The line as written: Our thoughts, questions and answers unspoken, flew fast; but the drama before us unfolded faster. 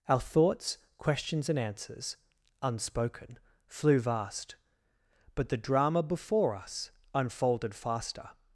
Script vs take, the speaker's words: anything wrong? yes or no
yes